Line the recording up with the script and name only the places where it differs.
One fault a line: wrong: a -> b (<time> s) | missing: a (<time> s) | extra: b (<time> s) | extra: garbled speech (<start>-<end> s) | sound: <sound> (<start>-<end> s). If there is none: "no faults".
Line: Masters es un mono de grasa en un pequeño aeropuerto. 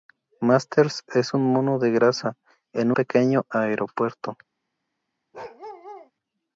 missing: un (2.9 s)
sound: bark (5.3-6.1 s)